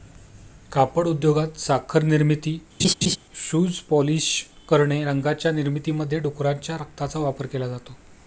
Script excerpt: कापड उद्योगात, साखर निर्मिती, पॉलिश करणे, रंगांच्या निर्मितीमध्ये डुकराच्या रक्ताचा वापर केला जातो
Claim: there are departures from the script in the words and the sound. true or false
true